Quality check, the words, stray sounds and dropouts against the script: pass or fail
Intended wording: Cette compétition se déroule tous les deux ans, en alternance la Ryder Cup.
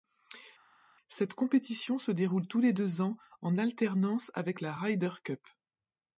fail